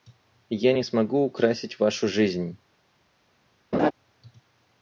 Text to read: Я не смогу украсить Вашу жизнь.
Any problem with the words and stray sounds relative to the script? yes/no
yes